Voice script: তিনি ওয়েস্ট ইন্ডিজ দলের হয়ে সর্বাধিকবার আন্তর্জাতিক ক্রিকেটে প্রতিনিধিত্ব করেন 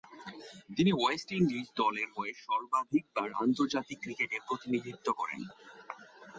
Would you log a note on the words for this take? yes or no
no